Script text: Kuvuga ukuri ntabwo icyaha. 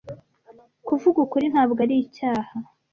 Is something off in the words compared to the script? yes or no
yes